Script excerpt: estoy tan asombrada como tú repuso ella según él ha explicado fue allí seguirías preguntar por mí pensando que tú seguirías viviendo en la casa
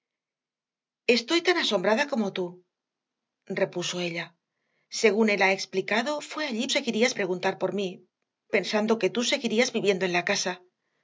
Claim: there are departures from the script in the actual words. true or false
false